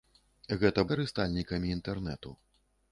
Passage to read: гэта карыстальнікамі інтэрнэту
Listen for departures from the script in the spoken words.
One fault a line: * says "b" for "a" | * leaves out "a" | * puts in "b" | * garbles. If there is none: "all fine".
all fine